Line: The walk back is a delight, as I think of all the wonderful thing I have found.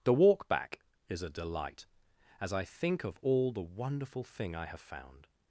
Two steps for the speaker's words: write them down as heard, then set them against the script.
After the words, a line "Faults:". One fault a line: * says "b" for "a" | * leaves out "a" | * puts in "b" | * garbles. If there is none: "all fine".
The walk back is a delight, as I think of all the wonderful thing I have found.
Faults:
all fine